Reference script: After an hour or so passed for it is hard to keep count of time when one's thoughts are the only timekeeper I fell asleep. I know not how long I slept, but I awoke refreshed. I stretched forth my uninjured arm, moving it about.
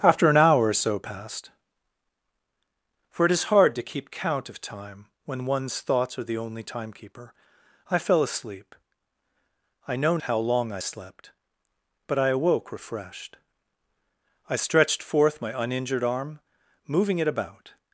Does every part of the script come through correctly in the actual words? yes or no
no